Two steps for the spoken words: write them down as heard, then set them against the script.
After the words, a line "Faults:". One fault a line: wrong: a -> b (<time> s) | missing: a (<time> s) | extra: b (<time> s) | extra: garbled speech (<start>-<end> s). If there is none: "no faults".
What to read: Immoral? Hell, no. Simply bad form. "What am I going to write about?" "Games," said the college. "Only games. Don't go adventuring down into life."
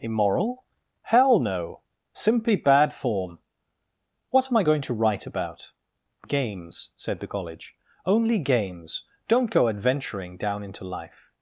Immoral? Hell, no. Simply bad form. "What am I going to write about?" "Games," said the college. "Only games. Don't go adventuring down into life."
Faults:
no faults